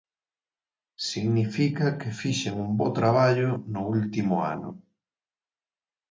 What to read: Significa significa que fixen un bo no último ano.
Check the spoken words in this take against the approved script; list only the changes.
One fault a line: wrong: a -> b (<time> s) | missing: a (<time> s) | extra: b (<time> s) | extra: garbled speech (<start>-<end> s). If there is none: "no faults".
missing: significa (1.9 s)
extra: traballo (3.0 s)